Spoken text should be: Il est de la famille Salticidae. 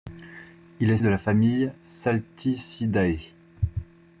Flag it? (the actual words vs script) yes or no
no